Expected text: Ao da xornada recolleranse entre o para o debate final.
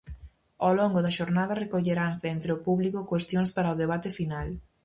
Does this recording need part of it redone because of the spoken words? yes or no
yes